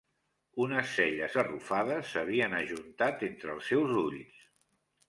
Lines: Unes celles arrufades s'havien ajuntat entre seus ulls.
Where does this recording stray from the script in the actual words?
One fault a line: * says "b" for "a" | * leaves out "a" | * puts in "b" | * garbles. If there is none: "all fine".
* puts in "els"